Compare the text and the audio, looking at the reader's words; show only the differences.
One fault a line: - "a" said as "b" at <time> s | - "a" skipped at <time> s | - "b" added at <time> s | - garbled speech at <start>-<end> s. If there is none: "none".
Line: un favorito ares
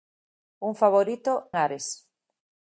none